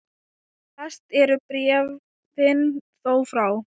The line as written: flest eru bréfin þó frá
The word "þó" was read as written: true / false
true